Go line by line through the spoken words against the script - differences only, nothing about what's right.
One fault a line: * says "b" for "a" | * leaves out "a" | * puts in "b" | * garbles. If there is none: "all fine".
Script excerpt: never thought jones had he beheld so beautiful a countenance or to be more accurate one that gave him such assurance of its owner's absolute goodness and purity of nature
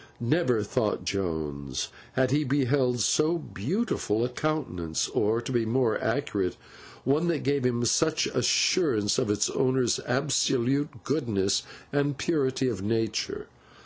all fine